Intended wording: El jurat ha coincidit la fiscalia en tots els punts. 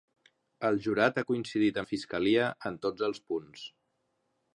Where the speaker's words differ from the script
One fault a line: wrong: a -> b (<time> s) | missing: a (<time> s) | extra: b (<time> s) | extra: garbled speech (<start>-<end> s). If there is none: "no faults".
no faults